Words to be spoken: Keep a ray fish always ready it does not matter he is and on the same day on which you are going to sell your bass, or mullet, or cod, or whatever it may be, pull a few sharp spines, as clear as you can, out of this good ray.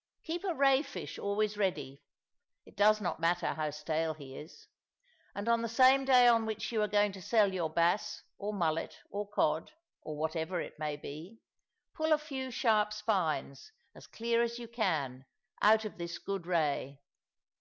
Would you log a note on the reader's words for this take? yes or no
yes